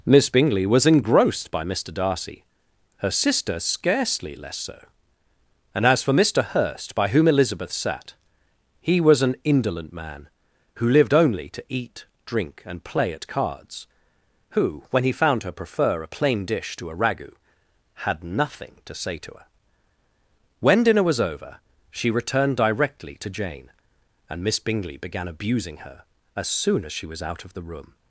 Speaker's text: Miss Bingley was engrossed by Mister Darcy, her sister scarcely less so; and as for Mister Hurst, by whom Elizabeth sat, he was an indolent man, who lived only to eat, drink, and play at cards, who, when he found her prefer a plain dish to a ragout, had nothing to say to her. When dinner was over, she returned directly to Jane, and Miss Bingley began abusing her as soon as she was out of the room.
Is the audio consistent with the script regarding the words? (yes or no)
yes